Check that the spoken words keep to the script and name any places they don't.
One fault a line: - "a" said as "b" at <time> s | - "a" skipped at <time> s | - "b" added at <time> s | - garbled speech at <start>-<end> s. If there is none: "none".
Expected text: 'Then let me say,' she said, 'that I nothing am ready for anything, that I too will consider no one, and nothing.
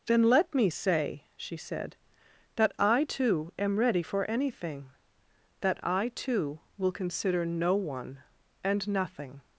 - "nothing" said as "too" at 3.0 s